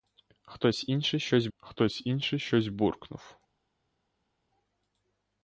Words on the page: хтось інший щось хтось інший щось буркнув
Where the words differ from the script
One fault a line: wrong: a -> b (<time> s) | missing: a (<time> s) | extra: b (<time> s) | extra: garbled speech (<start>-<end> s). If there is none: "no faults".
no faults